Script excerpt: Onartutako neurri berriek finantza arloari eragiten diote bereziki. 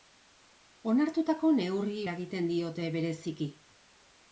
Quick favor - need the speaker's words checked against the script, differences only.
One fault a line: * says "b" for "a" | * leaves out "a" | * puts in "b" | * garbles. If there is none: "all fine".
* leaves out "berriek finantza arloari"